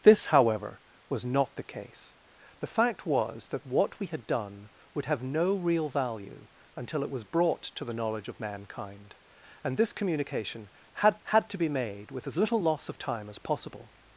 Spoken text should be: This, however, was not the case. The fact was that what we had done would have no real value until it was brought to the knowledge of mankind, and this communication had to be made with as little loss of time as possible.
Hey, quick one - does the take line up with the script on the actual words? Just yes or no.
no